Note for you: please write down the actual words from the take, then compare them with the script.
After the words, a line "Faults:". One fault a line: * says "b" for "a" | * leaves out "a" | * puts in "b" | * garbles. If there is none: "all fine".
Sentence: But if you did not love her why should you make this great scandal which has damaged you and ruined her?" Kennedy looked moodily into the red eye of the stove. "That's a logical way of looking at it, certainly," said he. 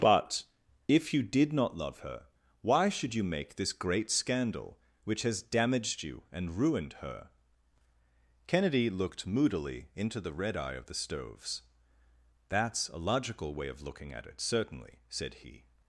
But if you did not love her why should you make this great scandal which has damaged you and ruined her?" Kennedy looked moodily into the red eye of the stoves. "That's a logical way of looking at it, certainly," said he.
Faults:
* says "stoves" for "stove"